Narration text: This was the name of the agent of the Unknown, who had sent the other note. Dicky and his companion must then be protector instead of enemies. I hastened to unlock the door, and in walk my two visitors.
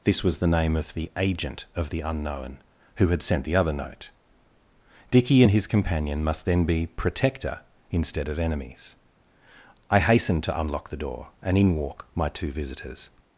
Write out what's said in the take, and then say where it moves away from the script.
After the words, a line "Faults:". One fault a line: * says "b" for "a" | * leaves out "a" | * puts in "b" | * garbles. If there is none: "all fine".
This was the name of the agent of the Unknown, who had sent the other note. Dicky and his companion must then be protector instead of enemies. I hastened to unlock the door, and in walk my two visitors.
Faults:
all fine